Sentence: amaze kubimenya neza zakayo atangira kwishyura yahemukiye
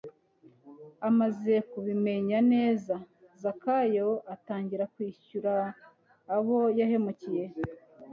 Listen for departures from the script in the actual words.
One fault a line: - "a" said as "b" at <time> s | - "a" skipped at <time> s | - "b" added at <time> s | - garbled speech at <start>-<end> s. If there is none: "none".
- "abo" added at 6.3 s